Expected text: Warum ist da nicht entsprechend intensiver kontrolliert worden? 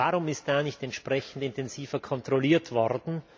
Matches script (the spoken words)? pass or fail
pass